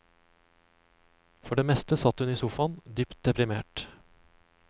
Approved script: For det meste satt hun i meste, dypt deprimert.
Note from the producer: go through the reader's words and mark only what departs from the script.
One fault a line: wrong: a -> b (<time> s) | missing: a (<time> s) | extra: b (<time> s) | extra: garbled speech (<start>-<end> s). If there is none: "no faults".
wrong: meste -> sofaen (2.4 s)